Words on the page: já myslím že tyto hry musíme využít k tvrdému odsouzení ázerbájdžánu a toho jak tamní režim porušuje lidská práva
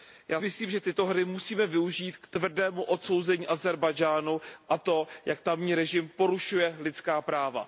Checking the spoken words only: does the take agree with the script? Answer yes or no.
yes